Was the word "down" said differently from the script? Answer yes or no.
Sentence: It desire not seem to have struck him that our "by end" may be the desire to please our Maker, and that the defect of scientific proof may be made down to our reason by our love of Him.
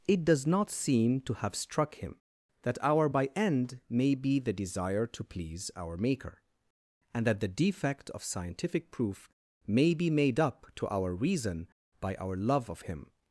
yes